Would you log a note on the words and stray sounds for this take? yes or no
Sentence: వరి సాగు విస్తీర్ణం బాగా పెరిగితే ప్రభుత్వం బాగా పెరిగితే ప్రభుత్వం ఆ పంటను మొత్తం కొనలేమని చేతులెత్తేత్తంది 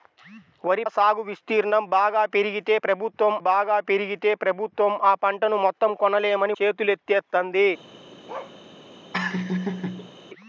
yes